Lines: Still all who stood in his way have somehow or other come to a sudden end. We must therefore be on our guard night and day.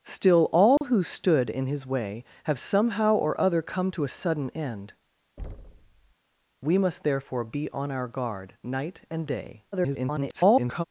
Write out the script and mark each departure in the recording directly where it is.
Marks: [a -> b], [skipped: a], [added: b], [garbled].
Still all who stood in his way have somehow or other come to a sudden end. We must therefore be on our guard night and day. [garbled]